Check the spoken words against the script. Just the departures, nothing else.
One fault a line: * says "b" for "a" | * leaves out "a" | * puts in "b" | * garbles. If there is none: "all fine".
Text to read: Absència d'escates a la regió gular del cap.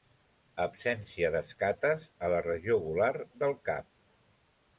all fine